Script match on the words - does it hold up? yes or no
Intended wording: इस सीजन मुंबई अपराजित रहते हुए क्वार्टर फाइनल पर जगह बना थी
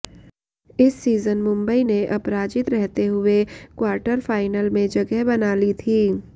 no